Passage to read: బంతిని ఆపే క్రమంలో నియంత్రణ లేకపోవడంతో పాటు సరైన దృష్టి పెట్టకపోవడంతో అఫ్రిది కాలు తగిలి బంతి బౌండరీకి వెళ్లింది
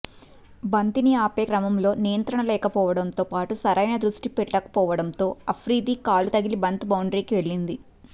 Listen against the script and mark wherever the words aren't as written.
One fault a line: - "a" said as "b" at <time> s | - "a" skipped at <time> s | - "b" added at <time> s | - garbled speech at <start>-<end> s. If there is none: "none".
none